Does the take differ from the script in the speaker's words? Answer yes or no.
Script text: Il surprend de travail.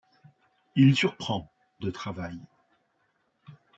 no